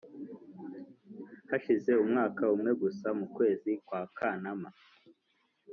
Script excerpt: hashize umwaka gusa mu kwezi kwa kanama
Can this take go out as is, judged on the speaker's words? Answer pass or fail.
fail